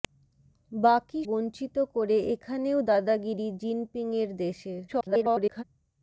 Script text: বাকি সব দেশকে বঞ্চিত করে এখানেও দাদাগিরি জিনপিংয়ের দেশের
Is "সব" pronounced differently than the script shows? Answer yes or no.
yes